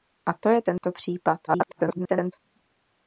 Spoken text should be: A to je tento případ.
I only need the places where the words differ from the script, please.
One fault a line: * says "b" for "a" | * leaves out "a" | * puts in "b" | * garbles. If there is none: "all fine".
* garbles